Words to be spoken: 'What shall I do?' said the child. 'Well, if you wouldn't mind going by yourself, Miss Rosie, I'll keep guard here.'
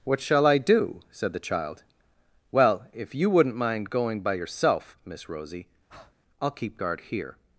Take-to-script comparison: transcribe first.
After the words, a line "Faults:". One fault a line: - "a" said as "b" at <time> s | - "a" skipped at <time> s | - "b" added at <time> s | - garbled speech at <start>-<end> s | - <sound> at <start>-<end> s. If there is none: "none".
'What shall I do?' said the child. 'Well, if you wouldn't mind going by yourself, Miss Rosie, I'll keep guard here.'
Faults:
- breath at 5.9-6.1 s